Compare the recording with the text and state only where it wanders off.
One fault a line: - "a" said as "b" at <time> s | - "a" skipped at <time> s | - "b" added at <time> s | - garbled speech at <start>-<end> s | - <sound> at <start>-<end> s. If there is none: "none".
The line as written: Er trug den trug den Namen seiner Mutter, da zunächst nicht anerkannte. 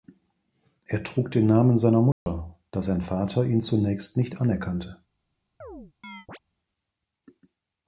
- "trug den" skipped at 1.4 s
- dropout at 2.1-2.3 s
- "sein Vater ihn" added at 2.8 s
- chirp at 5.6-6.4 s